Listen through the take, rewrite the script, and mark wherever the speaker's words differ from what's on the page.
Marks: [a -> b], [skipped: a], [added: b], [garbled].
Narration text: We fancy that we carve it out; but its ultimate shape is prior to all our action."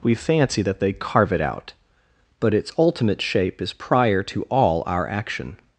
We fancy that [we -> they] carve it out; but its ultimate shape is prior to all our action."